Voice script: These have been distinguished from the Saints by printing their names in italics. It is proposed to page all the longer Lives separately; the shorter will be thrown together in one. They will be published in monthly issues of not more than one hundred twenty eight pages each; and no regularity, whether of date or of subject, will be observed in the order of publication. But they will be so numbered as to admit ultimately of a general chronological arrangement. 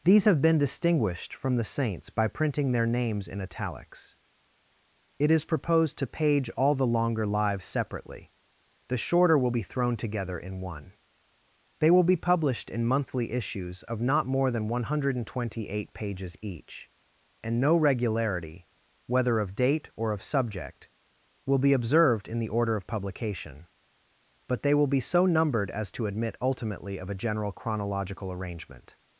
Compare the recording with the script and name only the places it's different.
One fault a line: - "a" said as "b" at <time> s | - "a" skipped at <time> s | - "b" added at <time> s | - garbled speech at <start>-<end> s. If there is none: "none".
none